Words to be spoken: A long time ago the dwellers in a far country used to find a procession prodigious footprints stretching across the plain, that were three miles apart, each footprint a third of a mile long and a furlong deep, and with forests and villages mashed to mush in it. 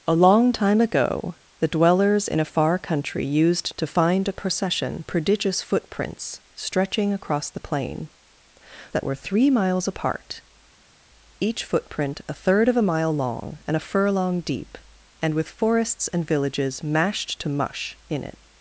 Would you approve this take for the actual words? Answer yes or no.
yes